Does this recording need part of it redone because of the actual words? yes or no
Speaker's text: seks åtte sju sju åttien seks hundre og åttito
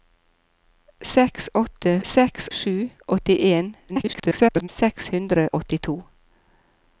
yes